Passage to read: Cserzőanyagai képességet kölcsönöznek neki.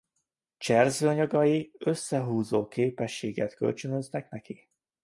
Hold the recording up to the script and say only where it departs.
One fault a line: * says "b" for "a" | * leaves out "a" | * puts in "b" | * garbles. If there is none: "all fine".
* puts in "összehúzó"